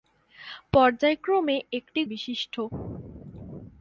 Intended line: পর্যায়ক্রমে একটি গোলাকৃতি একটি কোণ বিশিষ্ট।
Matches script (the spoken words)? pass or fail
fail